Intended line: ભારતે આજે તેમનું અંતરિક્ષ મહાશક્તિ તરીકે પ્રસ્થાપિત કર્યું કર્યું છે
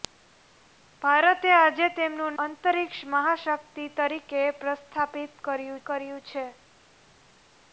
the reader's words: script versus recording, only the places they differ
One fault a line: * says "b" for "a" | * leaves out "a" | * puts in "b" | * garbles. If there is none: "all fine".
all fine